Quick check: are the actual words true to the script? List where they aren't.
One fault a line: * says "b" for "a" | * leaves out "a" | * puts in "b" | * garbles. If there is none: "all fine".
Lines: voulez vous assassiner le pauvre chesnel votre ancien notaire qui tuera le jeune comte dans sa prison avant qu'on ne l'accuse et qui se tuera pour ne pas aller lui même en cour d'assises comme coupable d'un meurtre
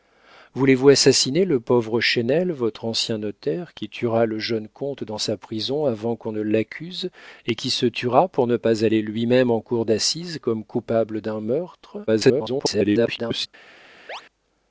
* garbles